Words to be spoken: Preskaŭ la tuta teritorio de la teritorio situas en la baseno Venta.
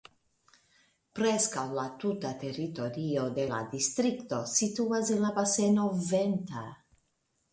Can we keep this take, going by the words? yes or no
no